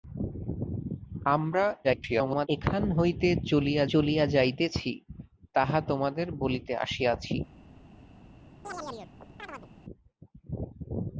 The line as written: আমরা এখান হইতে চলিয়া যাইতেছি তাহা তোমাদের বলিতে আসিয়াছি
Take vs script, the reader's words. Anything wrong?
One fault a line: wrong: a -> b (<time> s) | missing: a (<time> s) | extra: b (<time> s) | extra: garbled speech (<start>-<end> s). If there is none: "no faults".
extra: garbled speech (1.8-2.5 s)
extra: চলিয়া (3.9 s)